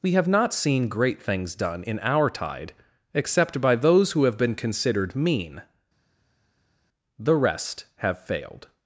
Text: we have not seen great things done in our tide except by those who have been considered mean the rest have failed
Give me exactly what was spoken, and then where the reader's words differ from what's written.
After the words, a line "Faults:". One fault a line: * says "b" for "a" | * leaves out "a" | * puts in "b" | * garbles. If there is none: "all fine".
we have not seen great things done in our tide except by those who have been considered mean the rest have failed
Faults:
all fine